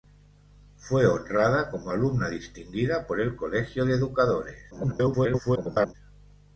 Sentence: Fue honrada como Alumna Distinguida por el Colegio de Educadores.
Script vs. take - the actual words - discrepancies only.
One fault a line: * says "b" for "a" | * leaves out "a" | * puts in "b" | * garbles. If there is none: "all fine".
* garbles